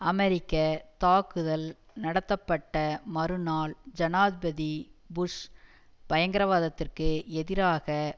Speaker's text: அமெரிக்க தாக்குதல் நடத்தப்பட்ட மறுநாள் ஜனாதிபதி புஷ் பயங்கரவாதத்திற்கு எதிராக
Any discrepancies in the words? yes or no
no